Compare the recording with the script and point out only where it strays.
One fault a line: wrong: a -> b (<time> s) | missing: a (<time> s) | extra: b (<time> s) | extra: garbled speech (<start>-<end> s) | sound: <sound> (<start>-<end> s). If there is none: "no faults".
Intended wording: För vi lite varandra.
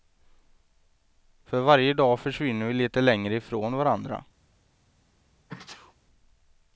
extra: varje dag försvinner (1.6 s)
extra: längre ifrån (3.0 s)
sound: sneeze (5.5-5.9 s)